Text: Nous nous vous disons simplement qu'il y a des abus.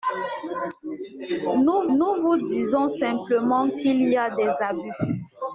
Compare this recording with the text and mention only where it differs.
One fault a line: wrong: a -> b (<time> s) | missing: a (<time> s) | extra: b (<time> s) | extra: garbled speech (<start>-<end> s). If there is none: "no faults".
no faults